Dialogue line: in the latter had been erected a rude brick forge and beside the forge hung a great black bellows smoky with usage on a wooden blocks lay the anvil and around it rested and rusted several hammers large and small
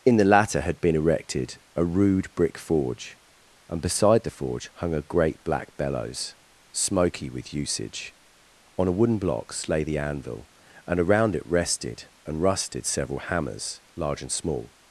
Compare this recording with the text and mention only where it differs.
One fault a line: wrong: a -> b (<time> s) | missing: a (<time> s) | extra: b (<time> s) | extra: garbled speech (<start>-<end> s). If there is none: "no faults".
no faults